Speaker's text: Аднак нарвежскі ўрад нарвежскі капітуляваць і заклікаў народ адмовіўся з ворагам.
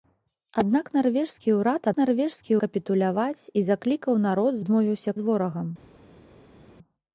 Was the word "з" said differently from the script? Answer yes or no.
no